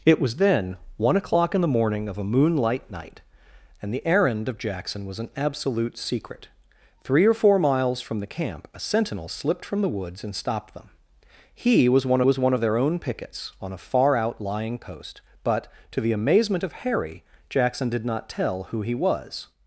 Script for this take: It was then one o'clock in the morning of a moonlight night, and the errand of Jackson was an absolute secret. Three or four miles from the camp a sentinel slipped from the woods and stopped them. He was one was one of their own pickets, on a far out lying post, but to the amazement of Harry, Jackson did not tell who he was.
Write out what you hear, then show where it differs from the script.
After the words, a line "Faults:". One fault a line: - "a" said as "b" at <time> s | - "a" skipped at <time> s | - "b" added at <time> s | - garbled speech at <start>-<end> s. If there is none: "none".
It was then one o'clock in the morning of a moonlight night, and the errand of Jackson was an absolute secret. Three or four miles from the camp a sentinel slipped from the woods and stopped them. He was one was one of their own pickets, on a far out lying post, but to the amazement of Harry, Jackson did not tell who he was.
Faults:
none